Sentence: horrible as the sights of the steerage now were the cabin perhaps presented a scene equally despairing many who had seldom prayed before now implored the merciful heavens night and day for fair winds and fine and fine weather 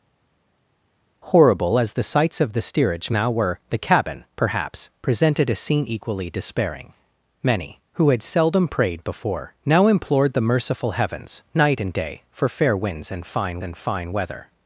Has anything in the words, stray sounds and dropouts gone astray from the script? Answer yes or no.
no